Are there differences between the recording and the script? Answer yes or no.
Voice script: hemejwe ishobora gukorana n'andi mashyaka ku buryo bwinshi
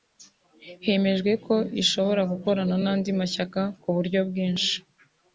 yes